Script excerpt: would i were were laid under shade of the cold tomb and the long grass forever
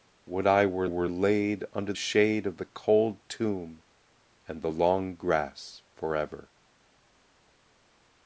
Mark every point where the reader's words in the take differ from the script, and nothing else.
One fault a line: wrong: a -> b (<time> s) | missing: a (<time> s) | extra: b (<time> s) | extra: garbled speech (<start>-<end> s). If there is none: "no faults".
no faults